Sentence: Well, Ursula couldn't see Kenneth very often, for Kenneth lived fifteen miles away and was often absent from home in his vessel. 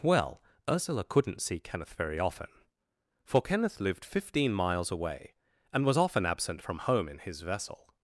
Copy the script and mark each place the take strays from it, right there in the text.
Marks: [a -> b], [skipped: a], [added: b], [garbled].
Well, Ursula couldn't see Kenneth very often, for Kenneth lived fifteen miles away and was often absent from home in his vessel.